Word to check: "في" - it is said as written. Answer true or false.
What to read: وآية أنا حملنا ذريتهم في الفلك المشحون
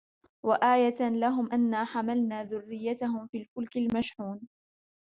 true